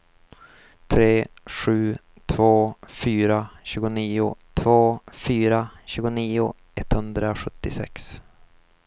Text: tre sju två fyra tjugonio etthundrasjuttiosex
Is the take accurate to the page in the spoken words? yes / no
no